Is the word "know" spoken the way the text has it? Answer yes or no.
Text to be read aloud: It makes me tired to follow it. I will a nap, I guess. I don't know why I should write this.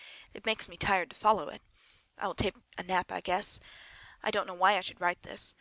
yes